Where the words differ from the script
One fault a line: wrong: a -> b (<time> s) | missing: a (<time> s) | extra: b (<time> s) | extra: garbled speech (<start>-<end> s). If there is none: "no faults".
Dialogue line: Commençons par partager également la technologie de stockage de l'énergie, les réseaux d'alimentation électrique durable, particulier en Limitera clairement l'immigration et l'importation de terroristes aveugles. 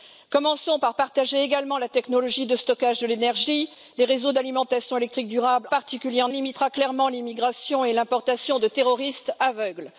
no faults